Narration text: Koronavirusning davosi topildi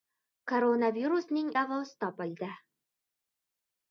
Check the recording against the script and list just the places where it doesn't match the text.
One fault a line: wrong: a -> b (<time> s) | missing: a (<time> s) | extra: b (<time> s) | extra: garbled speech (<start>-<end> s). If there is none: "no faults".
no faults